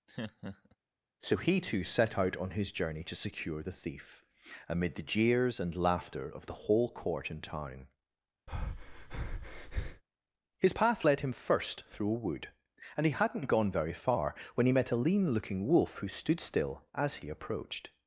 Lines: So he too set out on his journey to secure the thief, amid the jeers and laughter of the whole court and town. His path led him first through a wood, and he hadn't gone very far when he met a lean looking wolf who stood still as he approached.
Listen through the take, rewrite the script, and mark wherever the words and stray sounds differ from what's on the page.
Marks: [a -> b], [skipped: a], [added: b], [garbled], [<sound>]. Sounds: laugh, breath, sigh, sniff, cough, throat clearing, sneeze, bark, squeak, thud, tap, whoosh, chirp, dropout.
[laugh] So he too set out on his journey to secure the thief, amid the jeers and laughter of the whole court and town. [breath] His path led him first through a wood, and he hadn't gone very far when he met a lean looking wolf who stood still as he approached.